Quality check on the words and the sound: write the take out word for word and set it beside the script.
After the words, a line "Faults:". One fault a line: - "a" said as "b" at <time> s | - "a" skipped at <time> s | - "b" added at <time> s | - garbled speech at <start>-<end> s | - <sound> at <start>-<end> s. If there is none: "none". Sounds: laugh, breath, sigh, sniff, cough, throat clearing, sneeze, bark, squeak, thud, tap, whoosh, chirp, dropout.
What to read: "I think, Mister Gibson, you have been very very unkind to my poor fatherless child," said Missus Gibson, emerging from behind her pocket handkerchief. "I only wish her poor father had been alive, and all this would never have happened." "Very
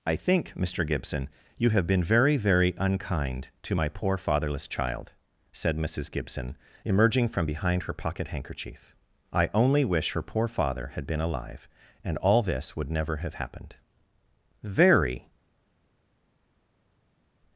"I think, Mister Gibson, you have been very very unkind to my poor fatherless child," said Missus Gibson, emerging from behind her pocket handkerchief. "I only wish her poor father had been alive, and all this would never have happened." "Very
Faults:
none